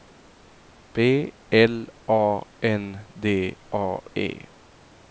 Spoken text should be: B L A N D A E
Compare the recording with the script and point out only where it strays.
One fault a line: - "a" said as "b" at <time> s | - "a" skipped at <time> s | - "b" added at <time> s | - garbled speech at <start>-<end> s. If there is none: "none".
none